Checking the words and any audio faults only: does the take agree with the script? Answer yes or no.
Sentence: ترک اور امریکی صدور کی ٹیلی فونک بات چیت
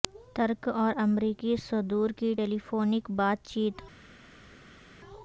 yes